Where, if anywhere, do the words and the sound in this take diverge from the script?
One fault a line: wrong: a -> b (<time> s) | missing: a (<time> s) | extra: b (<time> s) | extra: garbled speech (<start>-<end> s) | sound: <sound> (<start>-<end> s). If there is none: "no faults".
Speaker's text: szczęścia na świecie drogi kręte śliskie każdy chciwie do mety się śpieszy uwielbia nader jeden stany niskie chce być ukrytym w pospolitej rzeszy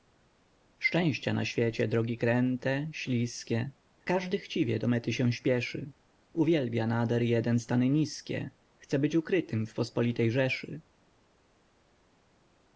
no faults